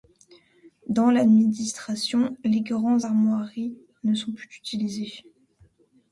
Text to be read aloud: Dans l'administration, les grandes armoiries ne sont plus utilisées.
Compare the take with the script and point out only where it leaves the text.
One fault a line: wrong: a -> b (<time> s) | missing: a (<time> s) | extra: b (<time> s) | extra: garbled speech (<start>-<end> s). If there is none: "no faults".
no faults